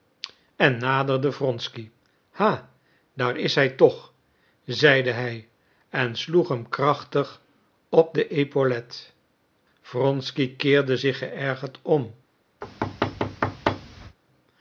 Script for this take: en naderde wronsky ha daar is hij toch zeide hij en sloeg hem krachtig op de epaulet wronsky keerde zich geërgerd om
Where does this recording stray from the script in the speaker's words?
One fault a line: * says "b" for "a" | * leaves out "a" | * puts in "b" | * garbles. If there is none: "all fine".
all fine